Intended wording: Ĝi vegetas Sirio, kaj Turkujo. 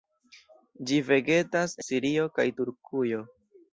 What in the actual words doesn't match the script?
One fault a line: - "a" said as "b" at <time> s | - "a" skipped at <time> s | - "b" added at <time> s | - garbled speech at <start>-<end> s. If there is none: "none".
none